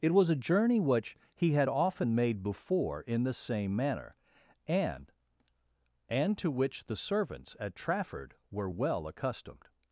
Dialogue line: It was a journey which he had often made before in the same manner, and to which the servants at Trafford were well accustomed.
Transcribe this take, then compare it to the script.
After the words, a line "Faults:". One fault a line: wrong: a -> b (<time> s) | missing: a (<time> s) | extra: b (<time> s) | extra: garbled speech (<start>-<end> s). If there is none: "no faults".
It was a journey which he had often made before in the same manner, and and to which the servants at Trafford were well accustomed.
Faults:
extra: and (6.1 s)